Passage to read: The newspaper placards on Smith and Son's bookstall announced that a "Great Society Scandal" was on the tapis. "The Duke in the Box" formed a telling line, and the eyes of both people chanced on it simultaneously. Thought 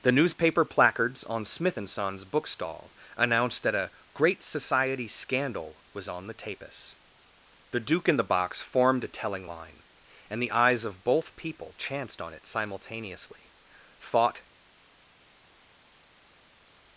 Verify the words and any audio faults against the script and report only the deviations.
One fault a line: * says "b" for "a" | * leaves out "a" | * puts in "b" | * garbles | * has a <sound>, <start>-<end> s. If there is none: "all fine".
all fine